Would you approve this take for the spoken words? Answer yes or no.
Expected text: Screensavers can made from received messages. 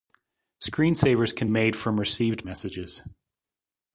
yes